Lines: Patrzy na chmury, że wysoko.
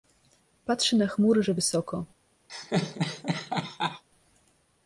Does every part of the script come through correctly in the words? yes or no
yes